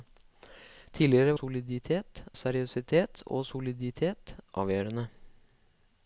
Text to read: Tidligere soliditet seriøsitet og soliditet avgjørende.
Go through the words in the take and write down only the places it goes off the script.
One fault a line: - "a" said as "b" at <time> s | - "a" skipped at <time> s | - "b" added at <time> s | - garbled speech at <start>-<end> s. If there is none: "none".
none